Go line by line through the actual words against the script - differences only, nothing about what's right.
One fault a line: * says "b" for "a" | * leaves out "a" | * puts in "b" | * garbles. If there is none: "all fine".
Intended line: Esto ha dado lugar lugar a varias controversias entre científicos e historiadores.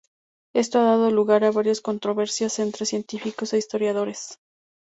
* leaves out "lugar"